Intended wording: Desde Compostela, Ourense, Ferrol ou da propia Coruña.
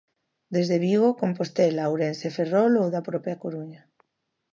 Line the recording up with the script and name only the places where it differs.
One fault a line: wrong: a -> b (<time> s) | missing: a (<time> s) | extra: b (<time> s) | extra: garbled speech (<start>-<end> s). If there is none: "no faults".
extra: Vigo (0.8 s)